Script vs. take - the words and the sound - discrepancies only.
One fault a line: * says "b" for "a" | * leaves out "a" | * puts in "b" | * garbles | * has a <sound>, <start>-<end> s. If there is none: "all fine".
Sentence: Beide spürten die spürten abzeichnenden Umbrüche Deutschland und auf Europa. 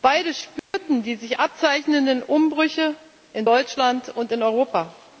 * has a dropout, 0.6-0.7 s
* says "sich" for "spürten"
* puts in "in"
* says "in" for "auf"